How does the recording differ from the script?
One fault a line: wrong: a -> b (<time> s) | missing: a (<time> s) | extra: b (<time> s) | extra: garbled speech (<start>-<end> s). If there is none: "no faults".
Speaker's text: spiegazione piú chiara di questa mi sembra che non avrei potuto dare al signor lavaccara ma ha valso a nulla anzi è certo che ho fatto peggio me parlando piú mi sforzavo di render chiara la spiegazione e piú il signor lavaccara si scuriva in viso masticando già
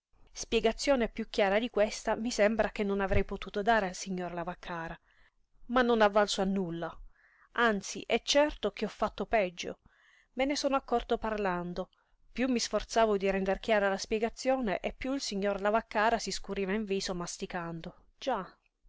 extra: non (5.8 s)
extra: ne sono accorto (10.4 s)